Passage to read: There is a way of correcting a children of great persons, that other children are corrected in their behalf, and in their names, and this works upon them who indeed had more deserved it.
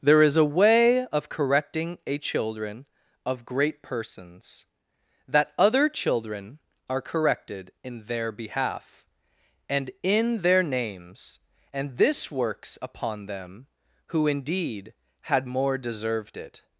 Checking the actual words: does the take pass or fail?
pass